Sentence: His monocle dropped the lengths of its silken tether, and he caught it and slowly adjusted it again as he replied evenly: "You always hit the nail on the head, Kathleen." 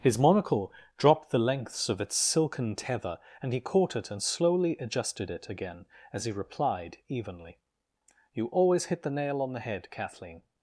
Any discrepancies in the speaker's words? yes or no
no